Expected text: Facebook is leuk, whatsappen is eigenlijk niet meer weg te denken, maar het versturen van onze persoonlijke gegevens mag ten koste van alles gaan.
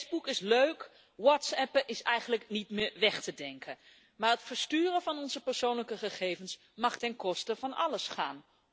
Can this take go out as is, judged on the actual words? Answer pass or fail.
pass